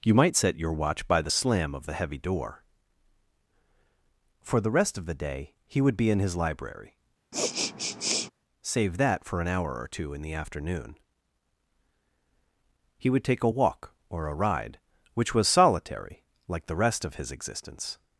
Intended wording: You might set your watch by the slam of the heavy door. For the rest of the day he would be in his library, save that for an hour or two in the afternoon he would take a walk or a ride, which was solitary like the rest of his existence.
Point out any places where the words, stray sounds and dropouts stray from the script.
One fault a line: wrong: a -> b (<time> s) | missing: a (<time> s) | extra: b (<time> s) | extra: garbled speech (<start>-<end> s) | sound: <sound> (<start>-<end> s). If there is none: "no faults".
sound: sniff (7.3-8.3 s)